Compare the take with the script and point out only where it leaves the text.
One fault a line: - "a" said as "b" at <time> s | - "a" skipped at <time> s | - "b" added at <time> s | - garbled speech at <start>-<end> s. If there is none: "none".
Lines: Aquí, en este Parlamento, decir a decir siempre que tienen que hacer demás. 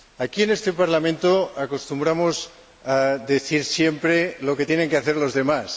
- "decir" said as "acostumbramos" at 1.6 s
- "lo" added at 4.4 s
- "los" added at 5.2 s